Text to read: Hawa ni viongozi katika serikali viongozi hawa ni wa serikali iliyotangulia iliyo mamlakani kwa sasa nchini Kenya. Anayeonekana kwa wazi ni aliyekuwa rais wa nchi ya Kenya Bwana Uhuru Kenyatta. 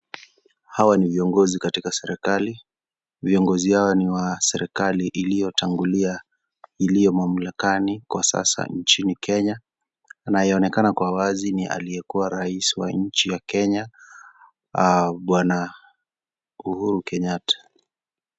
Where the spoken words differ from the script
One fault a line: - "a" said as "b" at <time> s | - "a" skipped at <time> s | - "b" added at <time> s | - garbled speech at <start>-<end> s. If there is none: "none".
none